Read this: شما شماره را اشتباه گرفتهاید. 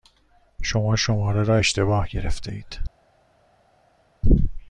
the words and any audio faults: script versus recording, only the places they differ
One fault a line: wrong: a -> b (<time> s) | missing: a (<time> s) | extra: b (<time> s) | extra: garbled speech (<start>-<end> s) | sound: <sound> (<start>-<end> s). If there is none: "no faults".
no faults